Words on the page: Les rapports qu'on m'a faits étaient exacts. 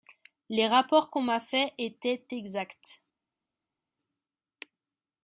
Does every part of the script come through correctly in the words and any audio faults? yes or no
yes